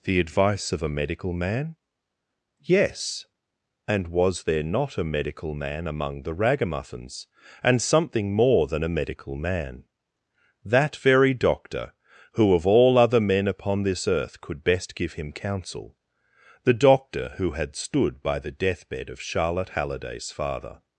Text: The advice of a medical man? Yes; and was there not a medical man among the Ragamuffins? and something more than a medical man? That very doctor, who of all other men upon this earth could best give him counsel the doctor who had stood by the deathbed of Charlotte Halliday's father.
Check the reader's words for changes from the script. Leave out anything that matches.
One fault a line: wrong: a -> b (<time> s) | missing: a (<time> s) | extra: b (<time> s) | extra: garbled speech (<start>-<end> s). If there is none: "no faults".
no faults